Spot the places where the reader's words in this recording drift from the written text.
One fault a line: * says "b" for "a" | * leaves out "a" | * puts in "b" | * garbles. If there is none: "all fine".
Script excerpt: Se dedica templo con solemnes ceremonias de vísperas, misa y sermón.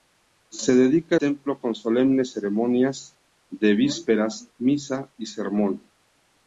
all fine